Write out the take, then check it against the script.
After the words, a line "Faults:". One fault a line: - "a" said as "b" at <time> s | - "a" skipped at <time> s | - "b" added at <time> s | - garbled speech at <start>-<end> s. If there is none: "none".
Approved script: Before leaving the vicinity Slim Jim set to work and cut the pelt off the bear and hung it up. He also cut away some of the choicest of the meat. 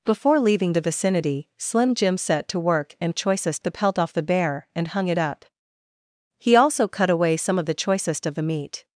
Before leaving the vicinity Slim Jim set to work and choicest the pelt off the bear and hung it up. He also cut away some of the choicest of the meat.
Faults:
- "cut" said as "choicest" at 3.1 s